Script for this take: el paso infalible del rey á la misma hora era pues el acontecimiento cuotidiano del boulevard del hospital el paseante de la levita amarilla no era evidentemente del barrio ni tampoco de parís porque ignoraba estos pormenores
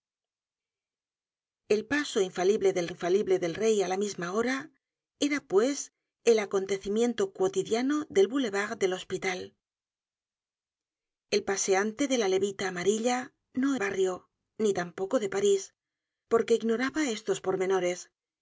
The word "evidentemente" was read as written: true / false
false